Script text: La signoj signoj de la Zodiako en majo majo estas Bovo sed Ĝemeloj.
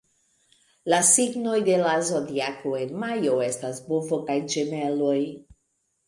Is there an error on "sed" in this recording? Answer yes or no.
yes